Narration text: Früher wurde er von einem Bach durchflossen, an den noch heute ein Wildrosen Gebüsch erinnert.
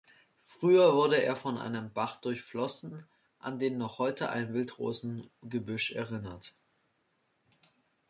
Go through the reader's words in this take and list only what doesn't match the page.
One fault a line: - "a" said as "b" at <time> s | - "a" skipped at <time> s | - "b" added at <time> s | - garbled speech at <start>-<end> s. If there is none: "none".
none